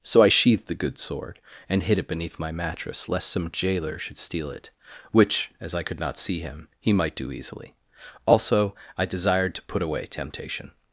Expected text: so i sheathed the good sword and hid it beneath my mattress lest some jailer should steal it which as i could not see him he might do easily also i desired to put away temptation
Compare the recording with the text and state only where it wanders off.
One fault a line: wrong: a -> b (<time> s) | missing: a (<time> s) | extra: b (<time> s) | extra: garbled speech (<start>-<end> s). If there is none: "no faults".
no faults